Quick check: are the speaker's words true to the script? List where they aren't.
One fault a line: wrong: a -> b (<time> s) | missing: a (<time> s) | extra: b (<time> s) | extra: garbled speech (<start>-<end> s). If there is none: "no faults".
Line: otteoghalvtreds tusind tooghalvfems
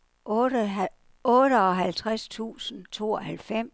no faults